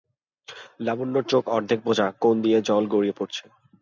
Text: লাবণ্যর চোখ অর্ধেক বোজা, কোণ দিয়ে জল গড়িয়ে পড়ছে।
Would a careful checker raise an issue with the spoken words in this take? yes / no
no